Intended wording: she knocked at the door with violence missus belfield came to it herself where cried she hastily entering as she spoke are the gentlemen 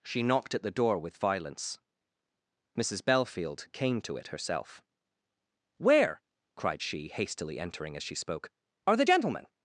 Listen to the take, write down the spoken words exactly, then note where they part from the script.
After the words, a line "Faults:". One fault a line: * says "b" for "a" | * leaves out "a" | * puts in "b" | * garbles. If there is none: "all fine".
she knocked at the door with violence missus belfield came to it herself where cried she hastily entering as she spoke are the gentlemen
Faults:
all fine